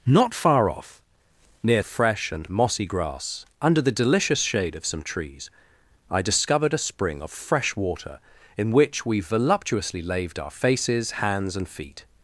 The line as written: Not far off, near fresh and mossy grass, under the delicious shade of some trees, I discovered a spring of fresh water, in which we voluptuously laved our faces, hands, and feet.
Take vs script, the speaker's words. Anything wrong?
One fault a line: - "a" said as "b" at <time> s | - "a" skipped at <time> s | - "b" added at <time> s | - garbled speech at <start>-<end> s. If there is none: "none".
none